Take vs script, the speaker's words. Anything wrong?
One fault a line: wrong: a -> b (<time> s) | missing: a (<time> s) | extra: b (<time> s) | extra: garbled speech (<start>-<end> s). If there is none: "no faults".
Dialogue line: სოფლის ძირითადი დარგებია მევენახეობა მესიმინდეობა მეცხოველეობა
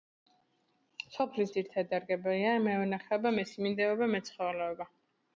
no faults